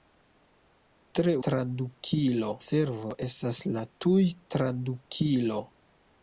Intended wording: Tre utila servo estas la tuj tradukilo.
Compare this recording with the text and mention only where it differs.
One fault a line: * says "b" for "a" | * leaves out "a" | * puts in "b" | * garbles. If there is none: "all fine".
* says "tradukilo" for "utila"